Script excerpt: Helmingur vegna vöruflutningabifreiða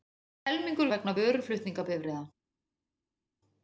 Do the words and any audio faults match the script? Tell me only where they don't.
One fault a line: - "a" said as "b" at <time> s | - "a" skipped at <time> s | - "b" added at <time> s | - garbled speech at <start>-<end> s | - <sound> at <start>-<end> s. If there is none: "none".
none